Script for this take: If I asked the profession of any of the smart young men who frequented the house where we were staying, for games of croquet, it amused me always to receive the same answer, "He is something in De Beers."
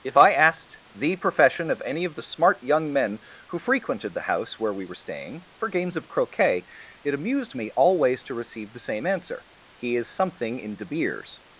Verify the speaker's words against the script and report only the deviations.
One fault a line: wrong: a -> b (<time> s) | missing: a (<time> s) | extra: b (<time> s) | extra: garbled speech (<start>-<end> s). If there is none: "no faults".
no faults